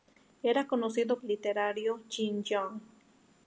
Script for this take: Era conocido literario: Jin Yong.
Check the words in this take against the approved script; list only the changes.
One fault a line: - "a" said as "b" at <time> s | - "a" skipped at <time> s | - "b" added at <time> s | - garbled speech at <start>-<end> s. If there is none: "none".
none